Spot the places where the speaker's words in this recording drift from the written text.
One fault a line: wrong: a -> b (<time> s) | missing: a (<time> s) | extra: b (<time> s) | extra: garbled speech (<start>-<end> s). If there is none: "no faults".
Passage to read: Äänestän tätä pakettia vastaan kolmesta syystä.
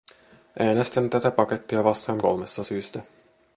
no faults